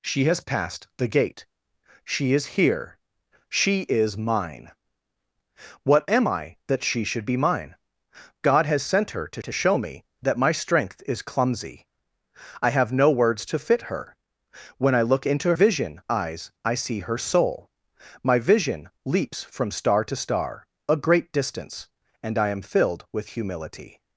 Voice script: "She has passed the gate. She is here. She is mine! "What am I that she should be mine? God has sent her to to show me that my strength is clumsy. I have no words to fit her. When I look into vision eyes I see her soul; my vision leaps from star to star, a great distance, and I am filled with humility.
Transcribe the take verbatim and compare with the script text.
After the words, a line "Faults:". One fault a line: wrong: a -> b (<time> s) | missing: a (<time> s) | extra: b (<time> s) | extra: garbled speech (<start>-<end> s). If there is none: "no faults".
"She has passed the gate. She is here. She is mine! "What am I that she should be mine? God has sent her to to show me that my strength is clumsy. I have no words to fit her. When I look into vision eyes I see her soul; my vision leaps from star to star, a great distance, and I am filled with humility.
Faults:
no faults